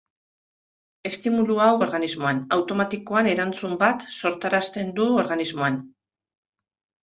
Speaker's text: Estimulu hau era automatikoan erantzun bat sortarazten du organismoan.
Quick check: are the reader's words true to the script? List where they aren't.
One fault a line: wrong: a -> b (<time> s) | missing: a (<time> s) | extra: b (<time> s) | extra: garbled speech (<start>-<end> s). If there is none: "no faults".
wrong: era -> organismoan (1.9 s)